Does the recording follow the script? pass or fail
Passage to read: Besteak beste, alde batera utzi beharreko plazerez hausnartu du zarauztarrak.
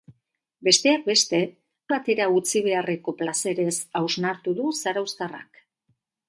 fail